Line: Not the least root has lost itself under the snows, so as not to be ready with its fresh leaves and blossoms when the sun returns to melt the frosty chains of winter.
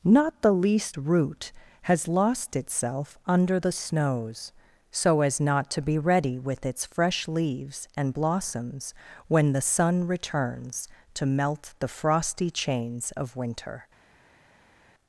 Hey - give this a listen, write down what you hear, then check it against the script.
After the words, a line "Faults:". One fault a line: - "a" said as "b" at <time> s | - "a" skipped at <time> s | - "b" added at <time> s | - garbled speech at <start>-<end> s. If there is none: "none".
Not the least root has lost itself under the snows, so as not to be ready with its fresh leaves and blossoms when the sun returns to melt the frosty chains of winter.
Faults:
none